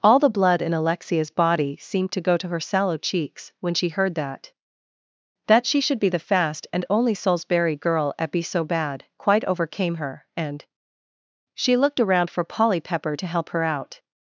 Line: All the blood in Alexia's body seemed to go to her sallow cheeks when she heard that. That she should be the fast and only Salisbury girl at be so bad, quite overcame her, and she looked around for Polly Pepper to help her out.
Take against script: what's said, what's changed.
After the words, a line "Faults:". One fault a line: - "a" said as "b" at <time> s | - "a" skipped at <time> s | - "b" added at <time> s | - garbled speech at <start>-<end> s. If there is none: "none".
All the blood in Alexia's body seemed to go to her sallow cheeks when she heard that. That she should be the fast and only Salisbury girl at be so bad, quite overcame her, and she looked around for Polly Pepper to help her out.
Faults:
none